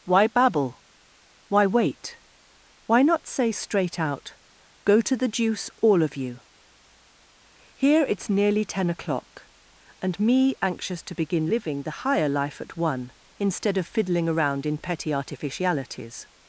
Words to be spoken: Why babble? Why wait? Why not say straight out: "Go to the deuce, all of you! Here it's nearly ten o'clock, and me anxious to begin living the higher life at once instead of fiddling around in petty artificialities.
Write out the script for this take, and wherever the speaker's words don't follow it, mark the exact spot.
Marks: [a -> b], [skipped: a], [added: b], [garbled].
Why babble? Why wait? Why not say straight out: "Go to the deuce, all of you! Here it's nearly ten o'clock, and me anxious to begin living the higher life at [once -> one] instead of fiddling around in petty artificialities.